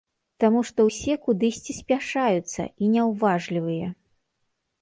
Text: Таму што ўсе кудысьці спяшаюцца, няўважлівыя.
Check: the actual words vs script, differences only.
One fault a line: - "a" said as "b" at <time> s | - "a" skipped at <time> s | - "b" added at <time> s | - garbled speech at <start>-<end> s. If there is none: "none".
- "і" added at 2.8 s